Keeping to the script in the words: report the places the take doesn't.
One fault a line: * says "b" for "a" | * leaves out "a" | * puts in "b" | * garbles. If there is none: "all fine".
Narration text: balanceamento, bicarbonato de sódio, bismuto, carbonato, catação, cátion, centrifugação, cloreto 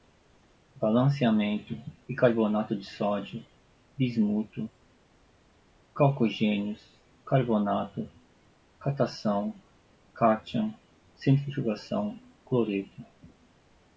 * puts in "calcogênios"